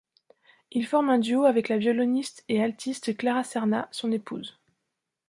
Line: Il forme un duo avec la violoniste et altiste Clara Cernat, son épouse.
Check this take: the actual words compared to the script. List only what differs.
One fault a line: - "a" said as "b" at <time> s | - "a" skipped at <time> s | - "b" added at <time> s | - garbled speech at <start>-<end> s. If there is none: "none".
none